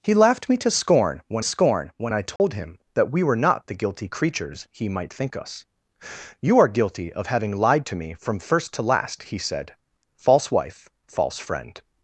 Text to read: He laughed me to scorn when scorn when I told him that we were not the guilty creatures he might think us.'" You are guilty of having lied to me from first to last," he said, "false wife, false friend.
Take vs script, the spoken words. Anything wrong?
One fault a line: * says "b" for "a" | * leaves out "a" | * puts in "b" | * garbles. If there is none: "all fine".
all fine